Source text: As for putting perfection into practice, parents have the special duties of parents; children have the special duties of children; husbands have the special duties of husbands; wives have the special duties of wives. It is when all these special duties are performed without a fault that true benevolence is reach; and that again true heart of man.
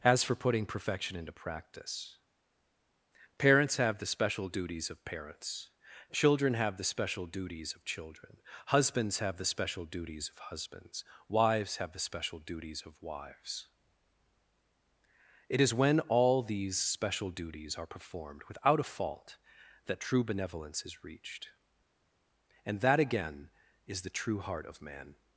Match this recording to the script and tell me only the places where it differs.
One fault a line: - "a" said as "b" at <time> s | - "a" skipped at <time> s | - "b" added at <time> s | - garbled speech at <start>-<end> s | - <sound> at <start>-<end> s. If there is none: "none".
- "reach" said as "reached" at 21.0 s
- "is the" added at 23.8 s